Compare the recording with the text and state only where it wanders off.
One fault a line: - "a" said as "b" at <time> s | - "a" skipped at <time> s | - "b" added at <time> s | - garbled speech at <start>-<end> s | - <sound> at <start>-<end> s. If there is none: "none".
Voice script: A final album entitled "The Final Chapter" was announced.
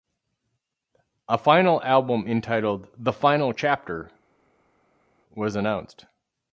none